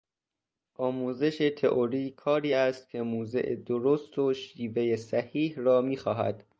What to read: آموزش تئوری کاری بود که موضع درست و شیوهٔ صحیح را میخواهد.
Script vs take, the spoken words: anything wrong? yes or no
yes